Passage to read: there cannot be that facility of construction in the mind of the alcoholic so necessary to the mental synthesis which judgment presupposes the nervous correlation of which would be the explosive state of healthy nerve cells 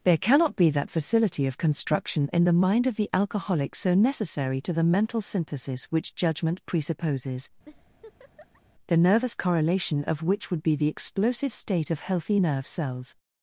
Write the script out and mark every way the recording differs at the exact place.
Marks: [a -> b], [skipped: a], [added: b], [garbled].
there cannot be that facility of construction in the mind of the alcoholic so necessary to the mental synthesis which judgment presupposes the nervous correlation of which would be the explosive state of healthy nerve cells